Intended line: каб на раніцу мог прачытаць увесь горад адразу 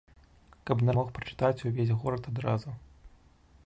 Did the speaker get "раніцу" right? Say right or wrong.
wrong